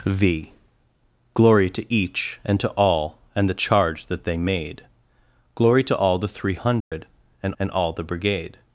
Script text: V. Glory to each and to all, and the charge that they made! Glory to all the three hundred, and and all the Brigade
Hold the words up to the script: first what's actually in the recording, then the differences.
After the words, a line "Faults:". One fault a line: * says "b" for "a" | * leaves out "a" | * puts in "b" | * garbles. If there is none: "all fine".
V. Glory to each and to all, and the charge that they made! Glory to all the three hundred, and and all the Brigade
Faults:
all fine